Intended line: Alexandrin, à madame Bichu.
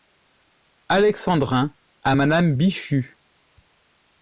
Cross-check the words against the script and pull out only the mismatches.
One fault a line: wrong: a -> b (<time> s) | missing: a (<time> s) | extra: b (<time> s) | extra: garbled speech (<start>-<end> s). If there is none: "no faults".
no faults